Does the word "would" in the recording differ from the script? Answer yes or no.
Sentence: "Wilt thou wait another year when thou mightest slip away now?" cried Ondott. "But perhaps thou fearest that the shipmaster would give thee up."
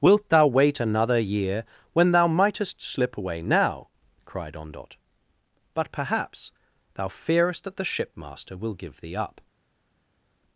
yes